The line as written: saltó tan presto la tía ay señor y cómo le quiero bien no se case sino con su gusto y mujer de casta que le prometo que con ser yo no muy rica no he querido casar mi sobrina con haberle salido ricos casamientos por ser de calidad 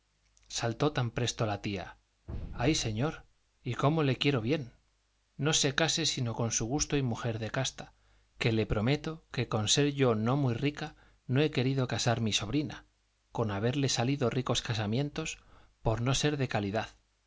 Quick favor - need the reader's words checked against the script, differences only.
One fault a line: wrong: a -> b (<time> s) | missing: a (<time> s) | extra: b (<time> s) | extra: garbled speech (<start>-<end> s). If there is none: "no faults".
extra: no (16.0 s)